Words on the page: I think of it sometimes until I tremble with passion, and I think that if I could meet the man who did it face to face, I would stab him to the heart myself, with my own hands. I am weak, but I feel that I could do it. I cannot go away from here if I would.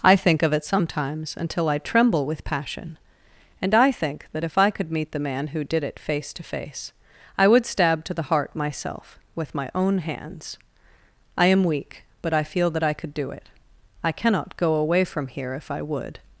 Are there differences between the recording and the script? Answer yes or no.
yes